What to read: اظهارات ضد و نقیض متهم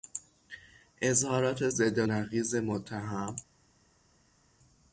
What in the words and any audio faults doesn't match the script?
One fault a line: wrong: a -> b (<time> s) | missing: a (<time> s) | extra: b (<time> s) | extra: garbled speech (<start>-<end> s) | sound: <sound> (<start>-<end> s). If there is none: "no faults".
no faults